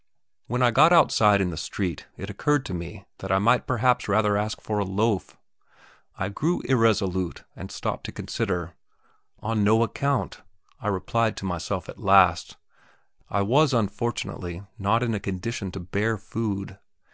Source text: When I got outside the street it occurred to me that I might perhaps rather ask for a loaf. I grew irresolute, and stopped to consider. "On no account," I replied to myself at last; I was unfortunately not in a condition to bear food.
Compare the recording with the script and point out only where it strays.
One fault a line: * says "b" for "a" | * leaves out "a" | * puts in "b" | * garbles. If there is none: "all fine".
* puts in "in"